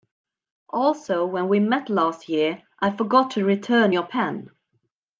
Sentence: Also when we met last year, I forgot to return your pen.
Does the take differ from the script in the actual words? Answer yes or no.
no